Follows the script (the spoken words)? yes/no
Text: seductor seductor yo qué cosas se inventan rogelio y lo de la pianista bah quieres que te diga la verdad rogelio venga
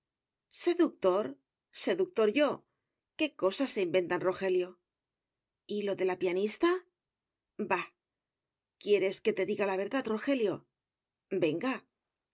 yes